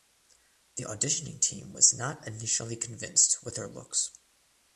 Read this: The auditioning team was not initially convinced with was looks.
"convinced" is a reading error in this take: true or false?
false